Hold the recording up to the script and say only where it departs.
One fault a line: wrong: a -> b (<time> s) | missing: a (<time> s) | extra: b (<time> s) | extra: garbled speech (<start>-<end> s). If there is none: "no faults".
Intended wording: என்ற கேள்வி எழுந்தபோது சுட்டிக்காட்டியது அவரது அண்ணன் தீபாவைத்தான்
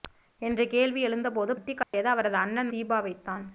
no faults